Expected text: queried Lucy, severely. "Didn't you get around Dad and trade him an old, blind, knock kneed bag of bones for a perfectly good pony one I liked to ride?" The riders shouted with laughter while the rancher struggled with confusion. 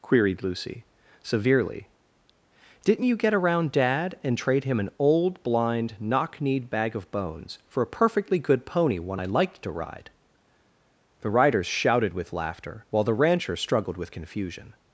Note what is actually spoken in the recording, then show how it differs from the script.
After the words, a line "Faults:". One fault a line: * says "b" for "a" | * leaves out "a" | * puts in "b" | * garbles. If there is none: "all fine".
queried Lucy, severely. "Didn't you get around Dad and trade him an old, blind, knock kneed bag of bones for a perfectly good pony one I liked to ride?" The riders shouted with laughter while the rancher struggled with confusion.
Faults:
all fine